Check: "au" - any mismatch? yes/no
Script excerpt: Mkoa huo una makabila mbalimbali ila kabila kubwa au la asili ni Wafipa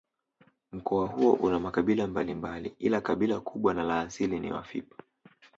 yes